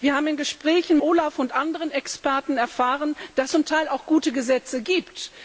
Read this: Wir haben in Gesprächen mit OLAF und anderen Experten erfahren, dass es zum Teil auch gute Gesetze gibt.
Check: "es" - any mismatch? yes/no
yes